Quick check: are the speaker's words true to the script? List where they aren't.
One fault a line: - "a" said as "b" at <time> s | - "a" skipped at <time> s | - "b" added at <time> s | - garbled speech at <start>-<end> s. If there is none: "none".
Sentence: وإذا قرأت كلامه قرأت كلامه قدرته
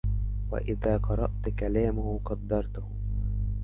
- "قرأت كلامه" skipped at 2.2 s